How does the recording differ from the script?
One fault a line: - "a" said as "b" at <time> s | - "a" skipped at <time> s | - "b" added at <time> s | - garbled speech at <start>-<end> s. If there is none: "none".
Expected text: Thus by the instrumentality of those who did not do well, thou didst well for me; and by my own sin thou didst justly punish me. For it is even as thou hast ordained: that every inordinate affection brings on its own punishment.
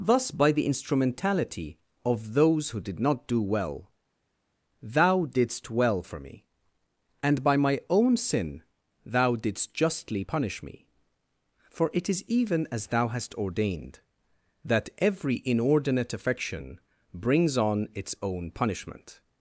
none